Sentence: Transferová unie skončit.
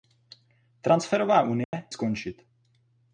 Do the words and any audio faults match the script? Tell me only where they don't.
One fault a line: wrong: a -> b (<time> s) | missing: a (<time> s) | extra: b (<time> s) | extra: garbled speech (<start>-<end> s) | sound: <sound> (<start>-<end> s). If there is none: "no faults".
sound: dropout (1.6-1.7 s)